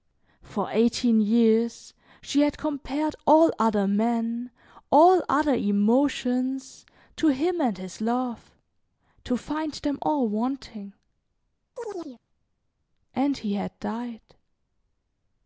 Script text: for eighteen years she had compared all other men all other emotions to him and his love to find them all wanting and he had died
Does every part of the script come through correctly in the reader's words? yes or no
yes